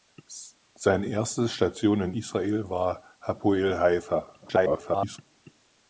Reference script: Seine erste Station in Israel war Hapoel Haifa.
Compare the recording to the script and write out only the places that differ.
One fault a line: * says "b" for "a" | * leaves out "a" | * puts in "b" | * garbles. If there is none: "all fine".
* garbles